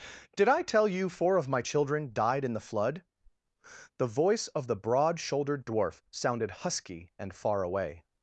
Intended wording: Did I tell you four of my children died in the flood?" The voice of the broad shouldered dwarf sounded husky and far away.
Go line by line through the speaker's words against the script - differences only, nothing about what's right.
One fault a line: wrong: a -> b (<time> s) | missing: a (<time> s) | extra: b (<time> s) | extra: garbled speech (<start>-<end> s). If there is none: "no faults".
no faults